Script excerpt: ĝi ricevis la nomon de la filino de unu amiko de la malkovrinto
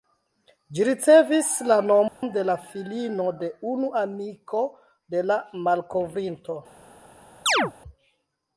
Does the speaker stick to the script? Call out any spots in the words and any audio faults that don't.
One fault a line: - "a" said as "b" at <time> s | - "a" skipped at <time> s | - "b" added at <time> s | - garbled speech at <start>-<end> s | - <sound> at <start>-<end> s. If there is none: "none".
- dropout at 2.1-2.2 s
- chirp at 7.5-7.7 s